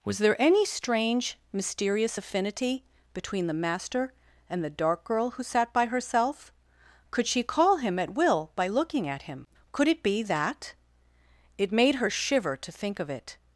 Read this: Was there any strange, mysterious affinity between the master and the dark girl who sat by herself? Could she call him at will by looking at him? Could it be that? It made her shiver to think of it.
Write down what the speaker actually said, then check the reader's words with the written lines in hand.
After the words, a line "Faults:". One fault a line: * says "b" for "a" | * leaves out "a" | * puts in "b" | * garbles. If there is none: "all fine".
Was there any strange, mysterious affinity between the master and the dark girl who sat by herself? Could she call him at will by looking at him? Could it be that? It made her shiver to think of it.
Faults:
all fine